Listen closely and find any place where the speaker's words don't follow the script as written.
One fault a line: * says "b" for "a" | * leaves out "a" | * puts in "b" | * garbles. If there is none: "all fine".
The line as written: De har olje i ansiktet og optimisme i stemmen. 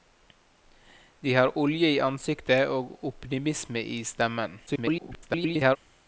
* garbles